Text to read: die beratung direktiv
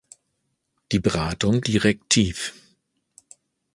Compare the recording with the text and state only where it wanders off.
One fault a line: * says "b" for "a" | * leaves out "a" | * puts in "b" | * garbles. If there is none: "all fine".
all fine